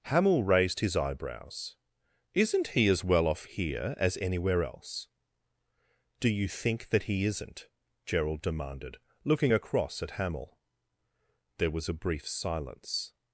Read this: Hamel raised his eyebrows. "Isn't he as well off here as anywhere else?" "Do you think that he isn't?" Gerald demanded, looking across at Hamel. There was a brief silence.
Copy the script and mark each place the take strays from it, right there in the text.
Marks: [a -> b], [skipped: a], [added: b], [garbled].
Hamel raised his eyebrows. "Isn't he as well off here as anywhere else?" "Do you think that he isn't?" Gerald demanded, looking across at Hamel. There was a brief silence.